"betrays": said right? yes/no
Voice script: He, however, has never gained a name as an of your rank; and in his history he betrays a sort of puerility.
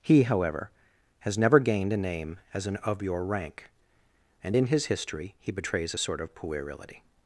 yes